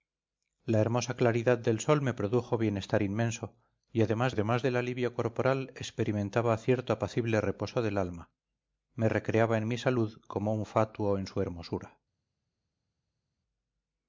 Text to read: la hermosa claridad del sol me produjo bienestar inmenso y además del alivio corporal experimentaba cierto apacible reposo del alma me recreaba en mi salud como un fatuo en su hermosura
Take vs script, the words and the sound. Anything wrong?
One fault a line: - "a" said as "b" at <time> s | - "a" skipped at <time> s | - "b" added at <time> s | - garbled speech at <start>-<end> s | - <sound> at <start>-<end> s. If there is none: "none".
- "además" added at 4.3 s